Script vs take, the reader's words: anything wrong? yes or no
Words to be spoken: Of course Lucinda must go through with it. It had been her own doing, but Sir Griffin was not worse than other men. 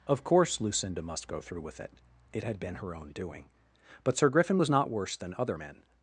no